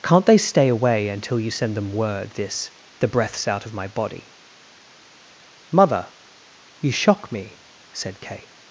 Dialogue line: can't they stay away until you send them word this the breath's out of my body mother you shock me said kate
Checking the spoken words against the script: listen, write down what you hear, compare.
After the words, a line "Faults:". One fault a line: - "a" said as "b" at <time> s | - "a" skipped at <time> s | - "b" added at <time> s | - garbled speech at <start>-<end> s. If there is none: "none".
can't they stay away until you send them word this the breath's out of my body mother you shock me said kate
Faults:
none